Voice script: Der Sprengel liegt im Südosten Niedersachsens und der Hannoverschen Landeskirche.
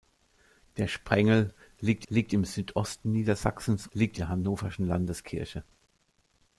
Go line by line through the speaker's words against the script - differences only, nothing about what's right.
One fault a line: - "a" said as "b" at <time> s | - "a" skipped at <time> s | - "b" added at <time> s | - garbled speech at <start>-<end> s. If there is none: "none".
- "liegt" added at 2.1 s
- "und" said as "liegt" at 3.9 s